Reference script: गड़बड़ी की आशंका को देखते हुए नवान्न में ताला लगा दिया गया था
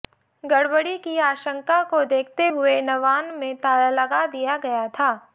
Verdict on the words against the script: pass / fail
pass